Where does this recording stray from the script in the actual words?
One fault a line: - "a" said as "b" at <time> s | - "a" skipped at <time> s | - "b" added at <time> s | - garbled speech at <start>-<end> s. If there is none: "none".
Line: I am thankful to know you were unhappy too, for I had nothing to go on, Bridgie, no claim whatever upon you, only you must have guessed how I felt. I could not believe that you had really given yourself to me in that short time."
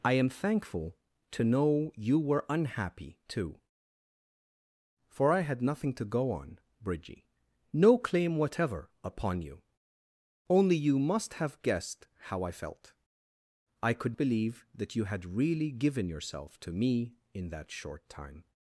- "not" skipped at 14.2 s